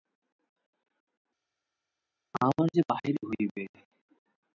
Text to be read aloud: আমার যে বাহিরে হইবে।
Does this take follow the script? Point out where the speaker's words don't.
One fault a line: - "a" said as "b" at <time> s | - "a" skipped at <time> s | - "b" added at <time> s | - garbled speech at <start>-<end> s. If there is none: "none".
none